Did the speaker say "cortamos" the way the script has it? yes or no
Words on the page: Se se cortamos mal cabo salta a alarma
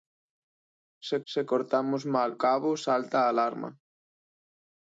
yes